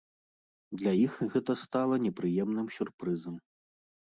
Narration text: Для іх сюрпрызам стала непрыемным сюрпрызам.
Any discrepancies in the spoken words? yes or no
yes